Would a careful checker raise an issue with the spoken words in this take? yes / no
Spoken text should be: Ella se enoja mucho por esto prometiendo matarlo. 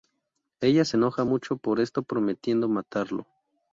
no